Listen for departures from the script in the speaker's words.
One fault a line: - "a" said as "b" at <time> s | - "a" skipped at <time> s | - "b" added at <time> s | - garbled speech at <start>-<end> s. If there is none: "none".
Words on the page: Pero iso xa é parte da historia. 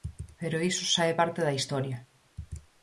none